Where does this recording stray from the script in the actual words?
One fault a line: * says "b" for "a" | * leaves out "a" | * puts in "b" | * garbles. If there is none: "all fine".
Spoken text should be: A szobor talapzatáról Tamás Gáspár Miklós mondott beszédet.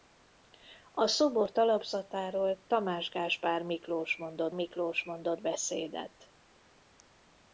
* puts in "Miklós mondott"